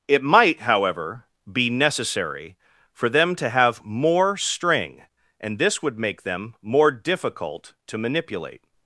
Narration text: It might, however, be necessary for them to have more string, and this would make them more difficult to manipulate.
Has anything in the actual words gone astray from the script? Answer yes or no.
no